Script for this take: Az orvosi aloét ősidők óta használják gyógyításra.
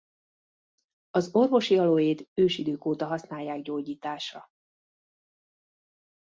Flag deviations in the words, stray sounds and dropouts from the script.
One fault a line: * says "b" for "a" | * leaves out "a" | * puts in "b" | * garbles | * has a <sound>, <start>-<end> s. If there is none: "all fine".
all fine